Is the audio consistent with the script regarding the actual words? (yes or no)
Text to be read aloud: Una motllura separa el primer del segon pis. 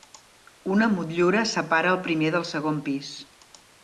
yes